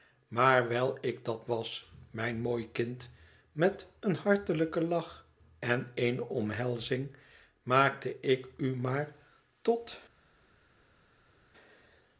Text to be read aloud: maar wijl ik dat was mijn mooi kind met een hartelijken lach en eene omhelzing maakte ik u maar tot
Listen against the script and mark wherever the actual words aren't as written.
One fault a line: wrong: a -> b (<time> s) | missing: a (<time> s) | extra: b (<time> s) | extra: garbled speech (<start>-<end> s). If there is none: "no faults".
no faults